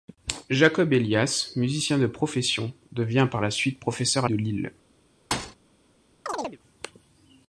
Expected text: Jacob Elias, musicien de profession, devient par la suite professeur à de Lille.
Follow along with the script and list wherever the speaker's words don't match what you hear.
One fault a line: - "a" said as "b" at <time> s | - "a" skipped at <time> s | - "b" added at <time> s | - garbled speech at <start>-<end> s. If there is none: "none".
none